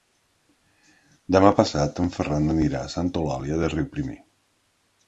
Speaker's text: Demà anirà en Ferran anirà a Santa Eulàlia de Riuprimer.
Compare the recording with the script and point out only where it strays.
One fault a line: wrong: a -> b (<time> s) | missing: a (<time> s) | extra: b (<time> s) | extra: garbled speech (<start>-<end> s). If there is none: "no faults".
wrong: anirà -> passat (1.6 s)